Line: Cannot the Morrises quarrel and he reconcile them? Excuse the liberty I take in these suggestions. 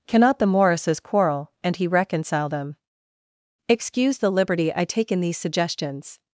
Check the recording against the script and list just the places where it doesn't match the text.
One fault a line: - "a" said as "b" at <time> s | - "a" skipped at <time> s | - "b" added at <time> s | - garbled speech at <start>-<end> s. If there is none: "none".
none